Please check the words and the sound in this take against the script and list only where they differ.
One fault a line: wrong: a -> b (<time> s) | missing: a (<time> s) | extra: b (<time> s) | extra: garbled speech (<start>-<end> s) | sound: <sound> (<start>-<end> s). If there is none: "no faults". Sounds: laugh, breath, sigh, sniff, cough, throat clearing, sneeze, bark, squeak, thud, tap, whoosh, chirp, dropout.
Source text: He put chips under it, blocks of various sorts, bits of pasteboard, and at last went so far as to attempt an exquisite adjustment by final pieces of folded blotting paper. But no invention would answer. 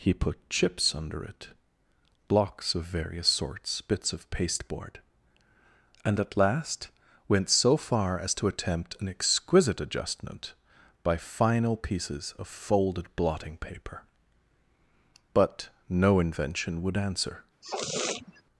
sound: sniff (17.6-18.4 s)